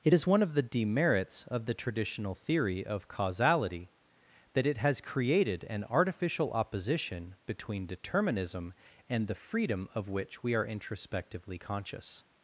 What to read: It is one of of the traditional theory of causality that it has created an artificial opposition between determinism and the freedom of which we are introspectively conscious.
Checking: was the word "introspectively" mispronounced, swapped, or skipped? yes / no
no